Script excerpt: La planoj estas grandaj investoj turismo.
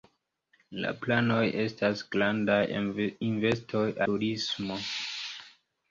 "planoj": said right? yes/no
yes